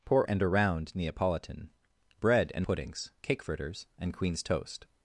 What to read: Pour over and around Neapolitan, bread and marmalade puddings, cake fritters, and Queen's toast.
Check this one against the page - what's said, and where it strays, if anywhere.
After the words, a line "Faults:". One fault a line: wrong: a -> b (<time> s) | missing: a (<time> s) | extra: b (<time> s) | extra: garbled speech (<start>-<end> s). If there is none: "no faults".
Pour and around Neapolitan, bread and puddings, cake fritters, and Queen's toast.
Faults:
missing: over (0.3 s)
missing: marmalade (2.7 s)